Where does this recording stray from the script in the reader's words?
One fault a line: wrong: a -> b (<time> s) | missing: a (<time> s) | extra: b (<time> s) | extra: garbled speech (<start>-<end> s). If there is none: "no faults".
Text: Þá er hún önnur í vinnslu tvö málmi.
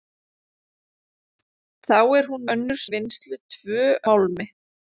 no faults